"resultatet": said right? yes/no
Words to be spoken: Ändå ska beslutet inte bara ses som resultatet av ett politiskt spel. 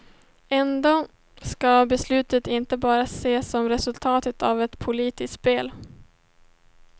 yes